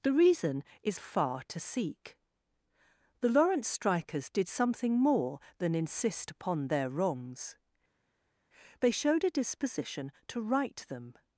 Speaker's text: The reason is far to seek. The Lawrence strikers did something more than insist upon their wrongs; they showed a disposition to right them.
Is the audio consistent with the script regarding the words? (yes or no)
yes